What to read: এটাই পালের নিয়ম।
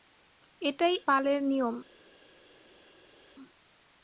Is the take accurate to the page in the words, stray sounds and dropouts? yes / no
yes